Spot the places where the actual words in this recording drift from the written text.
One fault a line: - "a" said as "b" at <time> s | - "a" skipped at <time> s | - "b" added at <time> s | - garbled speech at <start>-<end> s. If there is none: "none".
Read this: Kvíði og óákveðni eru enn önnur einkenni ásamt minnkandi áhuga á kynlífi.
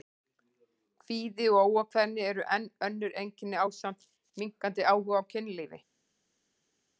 none